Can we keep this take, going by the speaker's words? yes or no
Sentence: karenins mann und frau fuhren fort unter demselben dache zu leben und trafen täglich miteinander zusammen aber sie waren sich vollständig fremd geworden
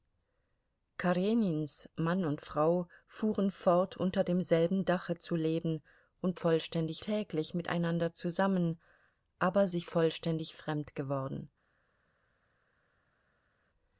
no